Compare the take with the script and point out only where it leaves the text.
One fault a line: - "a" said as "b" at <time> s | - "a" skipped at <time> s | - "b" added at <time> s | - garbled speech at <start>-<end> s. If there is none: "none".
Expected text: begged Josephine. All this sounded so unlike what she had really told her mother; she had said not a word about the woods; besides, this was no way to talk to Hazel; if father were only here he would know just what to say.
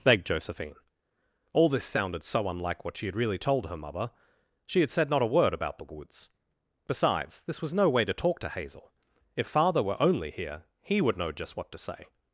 none